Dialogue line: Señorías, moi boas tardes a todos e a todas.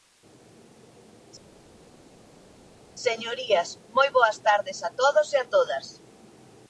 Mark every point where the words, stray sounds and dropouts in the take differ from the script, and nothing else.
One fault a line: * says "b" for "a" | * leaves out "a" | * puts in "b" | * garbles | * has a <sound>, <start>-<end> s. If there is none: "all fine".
all fine